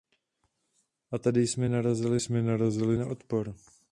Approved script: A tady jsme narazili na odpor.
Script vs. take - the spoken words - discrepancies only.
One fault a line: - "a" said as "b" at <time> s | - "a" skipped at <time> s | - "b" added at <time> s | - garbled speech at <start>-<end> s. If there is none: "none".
- "jsme narazili" added at 2.2 s